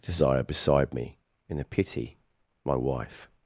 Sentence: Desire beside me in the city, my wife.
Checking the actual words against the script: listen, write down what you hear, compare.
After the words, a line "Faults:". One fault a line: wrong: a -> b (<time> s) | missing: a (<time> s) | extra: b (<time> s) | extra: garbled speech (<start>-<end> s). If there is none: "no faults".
Desire beside me in the pity, my wife.
Faults:
wrong: city -> pity (1.6 s)